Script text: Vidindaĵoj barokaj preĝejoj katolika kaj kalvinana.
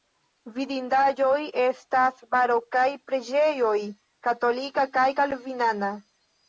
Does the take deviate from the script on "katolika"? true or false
false